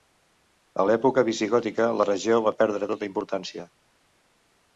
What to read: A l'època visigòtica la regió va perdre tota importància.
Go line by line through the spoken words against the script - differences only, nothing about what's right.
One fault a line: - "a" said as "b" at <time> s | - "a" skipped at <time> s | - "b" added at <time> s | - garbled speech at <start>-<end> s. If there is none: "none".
none